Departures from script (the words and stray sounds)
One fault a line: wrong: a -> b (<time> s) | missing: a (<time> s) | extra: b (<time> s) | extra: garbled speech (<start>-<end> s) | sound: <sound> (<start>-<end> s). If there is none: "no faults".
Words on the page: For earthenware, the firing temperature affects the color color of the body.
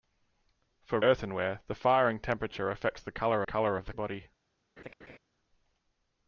sound: laugh (4.8-5.2 s)